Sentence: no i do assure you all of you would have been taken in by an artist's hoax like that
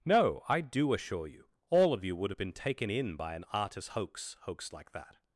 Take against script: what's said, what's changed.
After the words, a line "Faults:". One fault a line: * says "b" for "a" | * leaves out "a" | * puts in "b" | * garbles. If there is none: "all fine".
no i do assure you all of you would have been taken in by an artist's hoax hoax like that
Faults:
* puts in "hoax"